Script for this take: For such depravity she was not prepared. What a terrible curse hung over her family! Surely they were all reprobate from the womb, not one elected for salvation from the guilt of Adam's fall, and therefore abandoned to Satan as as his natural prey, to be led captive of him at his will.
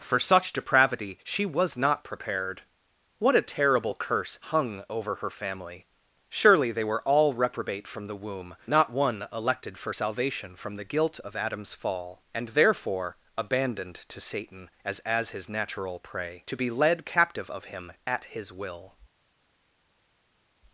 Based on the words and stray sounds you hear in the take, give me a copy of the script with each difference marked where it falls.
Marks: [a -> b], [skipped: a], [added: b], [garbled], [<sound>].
For such depravity she was not prepared. What a terrible curse hung over her family! Surely they were all reprobate from the womb, not one elected for salvation from the guilt of Adam's fall, and therefore abandoned to Satan as as his natural prey, to be led captive of him at his will.